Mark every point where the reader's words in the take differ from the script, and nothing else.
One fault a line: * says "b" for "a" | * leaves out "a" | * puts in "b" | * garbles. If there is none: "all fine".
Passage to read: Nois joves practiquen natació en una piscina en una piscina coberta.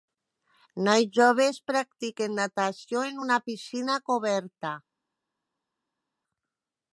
* leaves out "en una piscina"